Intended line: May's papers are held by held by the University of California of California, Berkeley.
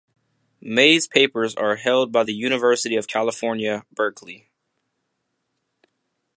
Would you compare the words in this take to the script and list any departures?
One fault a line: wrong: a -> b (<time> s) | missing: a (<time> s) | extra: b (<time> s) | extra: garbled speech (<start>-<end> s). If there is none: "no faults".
missing: held by (2.2 s)
missing: of California (3.8 s)